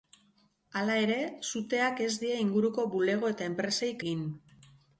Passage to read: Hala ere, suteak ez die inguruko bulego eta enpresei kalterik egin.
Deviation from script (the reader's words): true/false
true